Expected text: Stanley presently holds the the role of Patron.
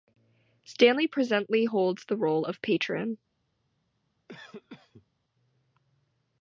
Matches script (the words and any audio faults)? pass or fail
fail